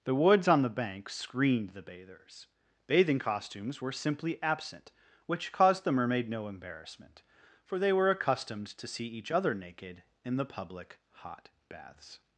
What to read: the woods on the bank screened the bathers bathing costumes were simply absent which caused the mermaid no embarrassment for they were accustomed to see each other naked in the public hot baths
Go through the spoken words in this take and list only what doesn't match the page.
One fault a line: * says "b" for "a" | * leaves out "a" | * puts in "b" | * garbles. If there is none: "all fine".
all fine